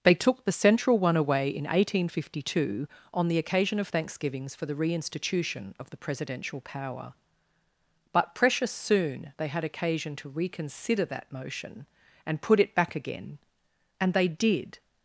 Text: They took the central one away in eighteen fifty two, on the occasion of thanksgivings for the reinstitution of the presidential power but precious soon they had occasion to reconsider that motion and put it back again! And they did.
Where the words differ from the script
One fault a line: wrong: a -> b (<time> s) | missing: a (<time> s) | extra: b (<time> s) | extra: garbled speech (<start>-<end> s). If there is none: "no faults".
no faults